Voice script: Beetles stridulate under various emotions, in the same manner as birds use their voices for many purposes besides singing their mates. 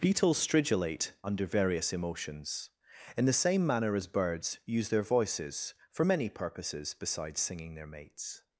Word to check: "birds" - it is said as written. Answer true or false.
true